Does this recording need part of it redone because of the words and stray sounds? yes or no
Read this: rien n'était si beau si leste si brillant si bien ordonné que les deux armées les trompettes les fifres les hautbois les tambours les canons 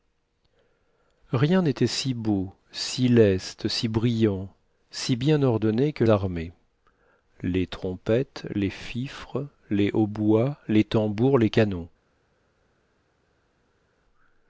yes